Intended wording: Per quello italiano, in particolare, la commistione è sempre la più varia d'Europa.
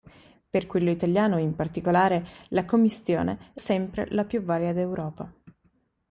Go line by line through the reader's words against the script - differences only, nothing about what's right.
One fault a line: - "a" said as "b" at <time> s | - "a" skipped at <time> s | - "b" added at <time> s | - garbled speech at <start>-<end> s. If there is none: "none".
none